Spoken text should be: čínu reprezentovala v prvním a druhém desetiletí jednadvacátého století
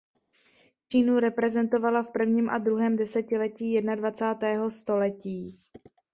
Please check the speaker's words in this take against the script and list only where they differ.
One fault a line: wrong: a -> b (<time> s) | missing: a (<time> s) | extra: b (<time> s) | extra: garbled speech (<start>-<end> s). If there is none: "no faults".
no faults